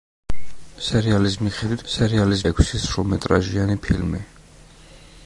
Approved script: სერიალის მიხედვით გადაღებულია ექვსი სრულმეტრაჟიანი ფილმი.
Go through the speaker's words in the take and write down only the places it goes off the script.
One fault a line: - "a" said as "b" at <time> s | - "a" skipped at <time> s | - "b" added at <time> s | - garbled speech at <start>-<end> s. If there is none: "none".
- "გადაღებულია" said as "სერიალის" at 1.9 s